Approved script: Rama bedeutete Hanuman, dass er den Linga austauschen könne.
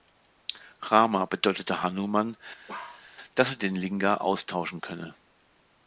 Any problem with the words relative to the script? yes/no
no